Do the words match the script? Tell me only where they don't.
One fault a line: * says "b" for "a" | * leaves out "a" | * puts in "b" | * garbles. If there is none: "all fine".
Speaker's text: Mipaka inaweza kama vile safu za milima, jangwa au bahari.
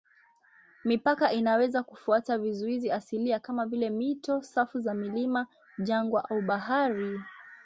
* puts in "kufuata vizuizi asilia"
* puts in "mito"